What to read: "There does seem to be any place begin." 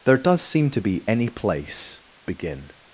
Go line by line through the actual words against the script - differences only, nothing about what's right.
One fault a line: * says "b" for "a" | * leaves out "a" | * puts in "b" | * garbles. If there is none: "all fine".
all fine